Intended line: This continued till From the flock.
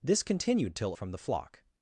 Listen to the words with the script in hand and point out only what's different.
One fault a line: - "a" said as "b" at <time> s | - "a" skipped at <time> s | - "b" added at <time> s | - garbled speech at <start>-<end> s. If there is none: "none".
none